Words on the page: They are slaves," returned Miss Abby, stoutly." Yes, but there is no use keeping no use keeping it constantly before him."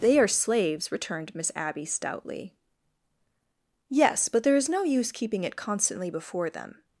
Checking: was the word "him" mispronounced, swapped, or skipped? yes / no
yes